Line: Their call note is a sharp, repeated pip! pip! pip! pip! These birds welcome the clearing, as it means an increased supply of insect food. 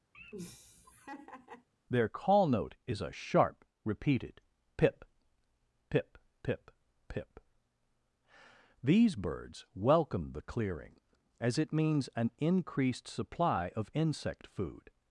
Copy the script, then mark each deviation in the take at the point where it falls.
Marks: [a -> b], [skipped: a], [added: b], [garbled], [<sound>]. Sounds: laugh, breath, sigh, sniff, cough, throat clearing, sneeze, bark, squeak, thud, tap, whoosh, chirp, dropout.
[laugh] Their call note is a sharp, repeated pip! pip! pip! pip! These birds welcome the clearing, as it means an increased supply of insect food.